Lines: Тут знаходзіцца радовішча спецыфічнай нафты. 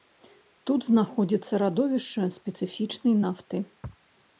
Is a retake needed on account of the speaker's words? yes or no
no